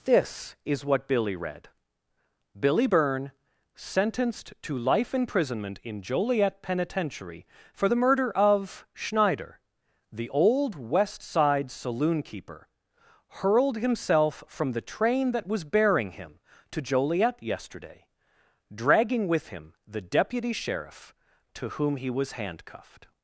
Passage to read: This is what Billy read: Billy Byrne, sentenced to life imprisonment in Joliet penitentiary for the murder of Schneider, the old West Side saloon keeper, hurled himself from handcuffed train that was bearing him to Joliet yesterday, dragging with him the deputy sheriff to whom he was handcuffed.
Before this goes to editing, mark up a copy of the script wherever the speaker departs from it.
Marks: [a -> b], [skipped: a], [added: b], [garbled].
This is what Billy read: Billy Byrne, sentenced to life imprisonment in Joliet penitentiary for the murder of Schneider, the old West Side saloon keeper, hurled himself from [handcuffed -> the] train that was bearing him to Joliet yesterday, dragging with him the deputy sheriff to whom he was handcuffed.